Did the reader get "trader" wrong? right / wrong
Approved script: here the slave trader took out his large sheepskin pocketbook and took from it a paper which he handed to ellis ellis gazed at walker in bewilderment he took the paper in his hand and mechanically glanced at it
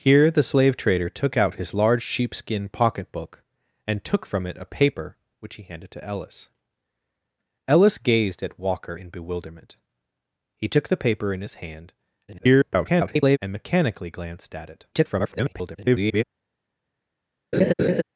right